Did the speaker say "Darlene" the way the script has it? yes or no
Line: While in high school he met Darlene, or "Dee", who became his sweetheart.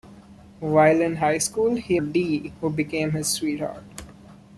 no